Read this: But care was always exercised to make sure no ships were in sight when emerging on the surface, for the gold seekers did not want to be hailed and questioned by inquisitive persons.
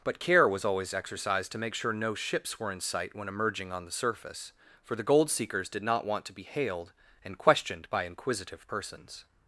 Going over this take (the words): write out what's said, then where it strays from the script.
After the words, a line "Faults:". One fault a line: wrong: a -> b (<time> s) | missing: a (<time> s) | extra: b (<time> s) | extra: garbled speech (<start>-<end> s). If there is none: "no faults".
But care was always exercised to make sure no ships were in sight when emerging on the surface, for the gold seekers did not want to be hailed and questioned by inquisitive persons.
Faults:
no faults